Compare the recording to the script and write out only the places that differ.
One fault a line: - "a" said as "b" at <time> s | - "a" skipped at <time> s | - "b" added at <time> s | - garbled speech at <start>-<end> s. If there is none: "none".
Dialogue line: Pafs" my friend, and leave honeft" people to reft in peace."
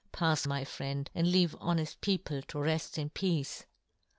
none